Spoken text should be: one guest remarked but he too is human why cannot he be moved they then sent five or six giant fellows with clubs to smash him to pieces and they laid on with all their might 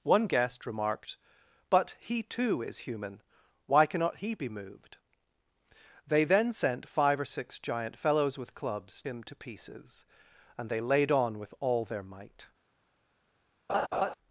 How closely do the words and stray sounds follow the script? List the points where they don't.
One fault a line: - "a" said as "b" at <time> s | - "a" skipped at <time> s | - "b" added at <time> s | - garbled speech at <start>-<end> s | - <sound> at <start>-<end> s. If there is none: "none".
- "to smash" skipped at 9.0 s
- laugh at 13.7-14.1 s